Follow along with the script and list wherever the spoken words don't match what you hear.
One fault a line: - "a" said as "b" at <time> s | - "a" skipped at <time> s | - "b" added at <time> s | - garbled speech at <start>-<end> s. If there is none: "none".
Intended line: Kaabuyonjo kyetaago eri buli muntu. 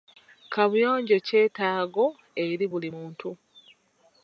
none